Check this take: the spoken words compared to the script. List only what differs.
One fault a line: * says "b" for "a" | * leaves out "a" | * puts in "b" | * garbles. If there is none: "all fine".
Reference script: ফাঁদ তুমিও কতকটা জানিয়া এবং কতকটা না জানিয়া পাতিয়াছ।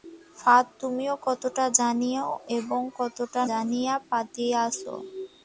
* leaves out "না"